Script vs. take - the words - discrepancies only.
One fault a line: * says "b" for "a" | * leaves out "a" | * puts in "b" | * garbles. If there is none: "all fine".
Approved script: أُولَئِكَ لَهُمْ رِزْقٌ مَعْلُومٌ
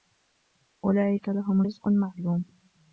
all fine